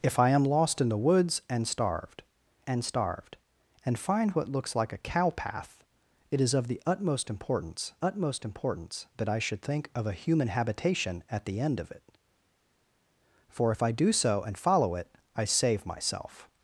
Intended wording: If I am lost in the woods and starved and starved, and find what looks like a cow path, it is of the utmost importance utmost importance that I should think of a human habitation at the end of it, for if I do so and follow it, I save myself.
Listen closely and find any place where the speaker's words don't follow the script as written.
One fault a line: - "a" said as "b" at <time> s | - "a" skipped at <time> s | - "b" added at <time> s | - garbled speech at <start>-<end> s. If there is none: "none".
none